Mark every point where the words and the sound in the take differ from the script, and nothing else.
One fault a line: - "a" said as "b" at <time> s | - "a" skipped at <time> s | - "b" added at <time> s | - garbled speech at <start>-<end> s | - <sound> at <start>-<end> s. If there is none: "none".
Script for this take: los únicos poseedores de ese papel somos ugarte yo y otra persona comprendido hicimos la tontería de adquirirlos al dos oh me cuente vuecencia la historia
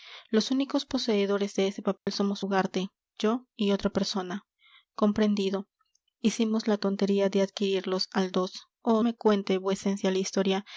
- dropout at 2.0-2.1 s